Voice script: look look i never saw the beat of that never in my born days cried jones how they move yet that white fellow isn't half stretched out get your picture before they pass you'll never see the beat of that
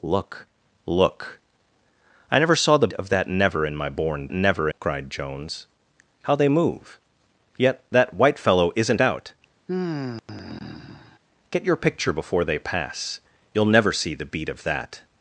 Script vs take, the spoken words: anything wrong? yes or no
yes